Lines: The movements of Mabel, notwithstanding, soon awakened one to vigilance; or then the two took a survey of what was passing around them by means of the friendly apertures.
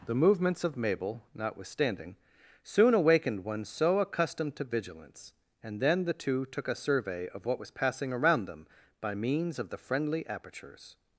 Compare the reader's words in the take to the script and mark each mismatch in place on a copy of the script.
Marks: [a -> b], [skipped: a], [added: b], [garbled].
The movements of Mabel, notwithstanding, soon awakened one [added: so accustomed] to vigilance; [or -> and] then the two took a survey of what was passing around them by means of the friendly apertures.